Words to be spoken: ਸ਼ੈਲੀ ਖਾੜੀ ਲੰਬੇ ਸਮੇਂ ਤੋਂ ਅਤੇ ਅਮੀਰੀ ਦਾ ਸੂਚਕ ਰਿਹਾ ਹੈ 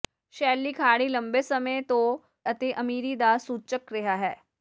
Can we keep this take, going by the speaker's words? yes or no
yes